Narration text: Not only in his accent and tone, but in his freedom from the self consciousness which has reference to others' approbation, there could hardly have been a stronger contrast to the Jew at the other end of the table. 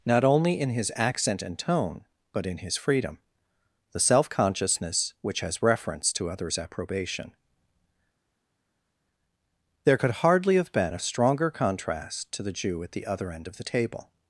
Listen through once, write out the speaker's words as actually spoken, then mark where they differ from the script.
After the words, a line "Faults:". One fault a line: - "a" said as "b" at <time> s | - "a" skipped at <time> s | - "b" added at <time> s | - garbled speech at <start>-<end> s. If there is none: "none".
Not only in his accent and tone, but in his freedom the self consciousness which has reference to others' approbation, there could hardly have been a stronger contrast to the Jew at the other end of the table.
Faults:
- "from" skipped at 3.2 s